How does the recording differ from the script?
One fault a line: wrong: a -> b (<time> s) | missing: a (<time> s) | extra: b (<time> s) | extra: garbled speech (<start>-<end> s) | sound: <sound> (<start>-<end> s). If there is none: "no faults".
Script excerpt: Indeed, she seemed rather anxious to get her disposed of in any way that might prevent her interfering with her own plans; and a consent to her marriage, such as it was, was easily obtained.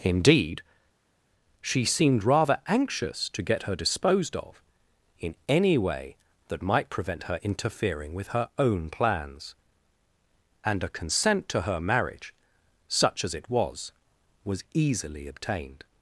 no faults